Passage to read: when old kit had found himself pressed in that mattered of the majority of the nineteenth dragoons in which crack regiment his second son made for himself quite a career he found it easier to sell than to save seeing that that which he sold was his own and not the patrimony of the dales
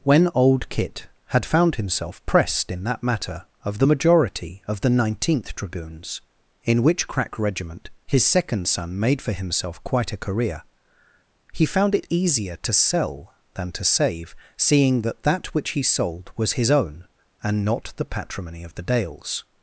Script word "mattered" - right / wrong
wrong